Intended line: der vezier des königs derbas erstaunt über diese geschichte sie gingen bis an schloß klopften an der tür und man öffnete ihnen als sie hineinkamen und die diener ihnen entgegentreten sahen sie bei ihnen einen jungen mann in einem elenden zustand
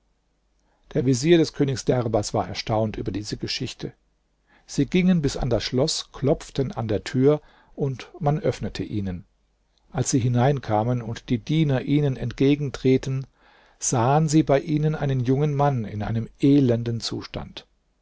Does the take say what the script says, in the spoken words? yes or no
no